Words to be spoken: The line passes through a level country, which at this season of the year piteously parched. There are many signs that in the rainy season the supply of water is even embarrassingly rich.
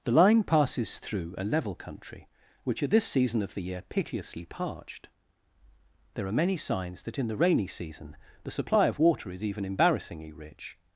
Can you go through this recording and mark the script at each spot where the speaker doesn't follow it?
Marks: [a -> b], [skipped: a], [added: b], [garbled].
The line passes through a level country, which at this season of the year piteously parched. There are many signs that in the rainy season the supply of water is even embarrassingly rich.